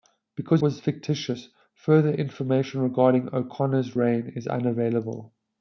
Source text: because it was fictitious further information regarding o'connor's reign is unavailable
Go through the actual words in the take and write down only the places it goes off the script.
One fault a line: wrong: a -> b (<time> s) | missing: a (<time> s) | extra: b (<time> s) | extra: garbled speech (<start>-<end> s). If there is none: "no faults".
missing: it (0.6 s)